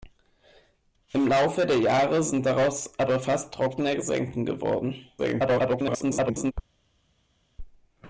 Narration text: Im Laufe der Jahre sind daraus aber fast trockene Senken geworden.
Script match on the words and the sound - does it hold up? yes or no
no